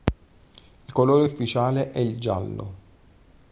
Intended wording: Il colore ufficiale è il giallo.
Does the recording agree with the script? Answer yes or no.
yes